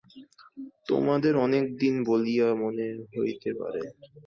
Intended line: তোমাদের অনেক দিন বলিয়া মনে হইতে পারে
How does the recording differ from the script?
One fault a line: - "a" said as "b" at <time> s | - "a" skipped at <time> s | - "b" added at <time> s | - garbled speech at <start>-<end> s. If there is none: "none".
none